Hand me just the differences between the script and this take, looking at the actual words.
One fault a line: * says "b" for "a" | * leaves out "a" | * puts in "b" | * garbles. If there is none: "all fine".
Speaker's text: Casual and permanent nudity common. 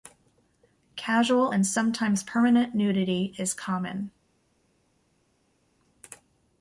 * puts in "sometimes"
* puts in "is"